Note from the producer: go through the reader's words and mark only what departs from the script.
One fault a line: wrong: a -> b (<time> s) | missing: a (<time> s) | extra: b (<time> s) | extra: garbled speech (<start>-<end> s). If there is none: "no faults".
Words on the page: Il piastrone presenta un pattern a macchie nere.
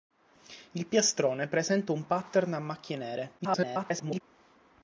extra: garbled speech (3.4-4.2 s)